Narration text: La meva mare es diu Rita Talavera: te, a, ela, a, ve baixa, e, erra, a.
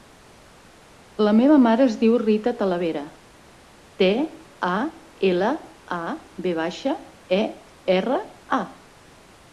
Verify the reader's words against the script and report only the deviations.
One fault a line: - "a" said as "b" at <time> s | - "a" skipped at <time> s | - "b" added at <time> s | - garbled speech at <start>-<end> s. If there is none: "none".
none